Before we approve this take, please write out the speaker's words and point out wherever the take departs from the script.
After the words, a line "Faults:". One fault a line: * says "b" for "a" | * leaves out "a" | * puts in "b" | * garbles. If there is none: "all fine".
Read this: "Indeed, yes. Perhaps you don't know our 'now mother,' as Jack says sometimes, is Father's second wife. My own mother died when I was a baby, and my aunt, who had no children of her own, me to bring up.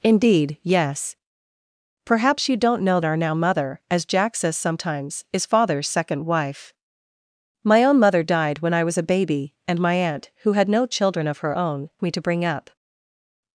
"Indeed, yes. Perhaps you don't know our 'now mother,' as Jack says sometimes, is Father's second wife. My own mother died when I was a baby, and my aunt, who had no children of her own, me to bring up.
Faults:
all fine